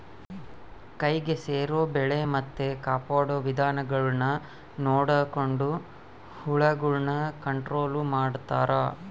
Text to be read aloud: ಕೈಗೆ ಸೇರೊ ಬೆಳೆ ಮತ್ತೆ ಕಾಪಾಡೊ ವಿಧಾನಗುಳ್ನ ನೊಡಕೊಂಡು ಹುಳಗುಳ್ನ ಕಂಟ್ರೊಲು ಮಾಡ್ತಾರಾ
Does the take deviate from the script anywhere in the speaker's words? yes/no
no